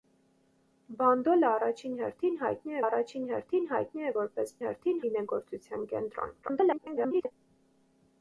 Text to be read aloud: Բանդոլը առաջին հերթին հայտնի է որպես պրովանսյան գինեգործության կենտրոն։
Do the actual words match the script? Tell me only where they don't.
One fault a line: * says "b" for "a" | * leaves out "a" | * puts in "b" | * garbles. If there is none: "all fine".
* puts in "առաջին հերթին հայտնի"
* says "հերթին" for "պրովանսյան"
* garbles